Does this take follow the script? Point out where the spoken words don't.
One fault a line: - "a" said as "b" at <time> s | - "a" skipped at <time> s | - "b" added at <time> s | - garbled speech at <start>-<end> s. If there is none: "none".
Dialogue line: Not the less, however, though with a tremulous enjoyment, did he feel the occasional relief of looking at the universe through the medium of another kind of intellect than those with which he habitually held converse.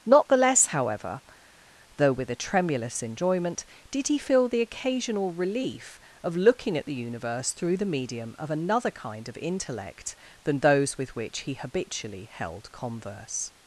none